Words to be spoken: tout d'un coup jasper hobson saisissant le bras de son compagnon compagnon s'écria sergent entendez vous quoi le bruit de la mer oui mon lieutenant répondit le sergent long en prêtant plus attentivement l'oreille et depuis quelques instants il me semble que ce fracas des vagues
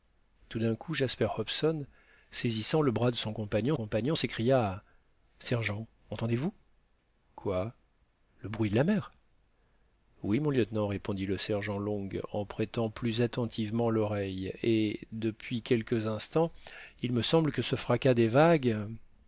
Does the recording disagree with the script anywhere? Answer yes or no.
no